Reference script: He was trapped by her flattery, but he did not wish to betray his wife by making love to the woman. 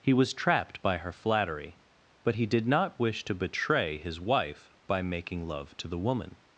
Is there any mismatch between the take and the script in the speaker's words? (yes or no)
no